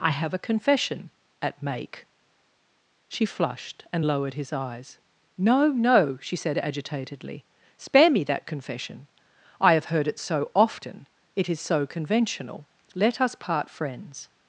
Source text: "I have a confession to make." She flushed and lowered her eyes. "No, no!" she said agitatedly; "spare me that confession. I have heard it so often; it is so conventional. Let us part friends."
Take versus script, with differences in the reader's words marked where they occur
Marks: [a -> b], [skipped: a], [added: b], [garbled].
"I have a confession [to -> at] make." She flushed and lowered [her -> his] eyes. "No, no!" she said agitatedly; "spare me that confession. I have heard it so often; it is so conventional. Let us part friends."